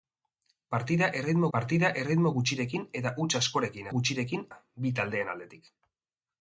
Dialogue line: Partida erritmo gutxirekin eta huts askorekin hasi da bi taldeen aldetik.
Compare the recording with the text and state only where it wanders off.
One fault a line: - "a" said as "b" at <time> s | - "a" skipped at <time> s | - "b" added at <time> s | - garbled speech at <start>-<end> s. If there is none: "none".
- "partida erritmo" added at 1.6 s
- "hasi" said as "gutxirekin" at 4.0 s